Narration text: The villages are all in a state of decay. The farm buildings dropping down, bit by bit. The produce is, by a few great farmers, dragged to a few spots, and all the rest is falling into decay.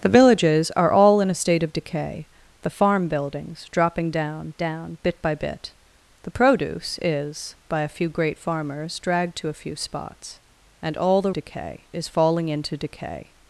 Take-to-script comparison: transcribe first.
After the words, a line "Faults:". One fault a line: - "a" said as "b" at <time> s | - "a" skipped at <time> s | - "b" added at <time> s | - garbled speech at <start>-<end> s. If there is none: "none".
The villages are all in a state of decay. The farm buildings dropping down down, bit by bit. The produce is, by a few great farmers, dragged to a few spots, and all the decay is falling into decay.
Faults:
- "down" added at 4.6 s
- "rest" said as "decay" at 11.3 s